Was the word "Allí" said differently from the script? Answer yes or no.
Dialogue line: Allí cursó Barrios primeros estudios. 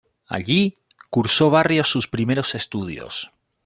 no